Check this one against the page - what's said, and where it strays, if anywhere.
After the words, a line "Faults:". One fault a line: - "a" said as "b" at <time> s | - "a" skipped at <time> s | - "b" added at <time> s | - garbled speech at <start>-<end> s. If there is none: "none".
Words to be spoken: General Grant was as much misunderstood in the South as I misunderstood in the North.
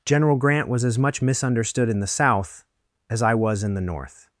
General Grant was as much misunderstood in the South as I was in the North.
Faults:
- "misunderstood" said as "was" at 3.4 s